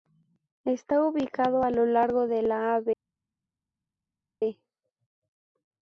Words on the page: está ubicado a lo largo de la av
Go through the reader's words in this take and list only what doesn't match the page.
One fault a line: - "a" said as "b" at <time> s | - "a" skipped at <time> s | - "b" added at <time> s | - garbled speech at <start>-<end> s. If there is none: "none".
none